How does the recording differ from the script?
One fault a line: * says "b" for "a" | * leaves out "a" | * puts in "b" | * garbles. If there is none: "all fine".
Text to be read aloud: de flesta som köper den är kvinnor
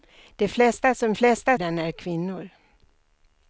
* says "flesta" for "köper"